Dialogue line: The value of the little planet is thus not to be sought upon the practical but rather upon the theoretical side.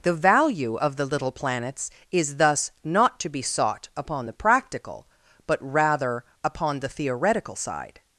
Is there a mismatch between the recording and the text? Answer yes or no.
yes